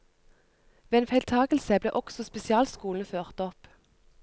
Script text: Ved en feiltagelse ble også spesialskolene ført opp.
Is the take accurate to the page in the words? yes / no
yes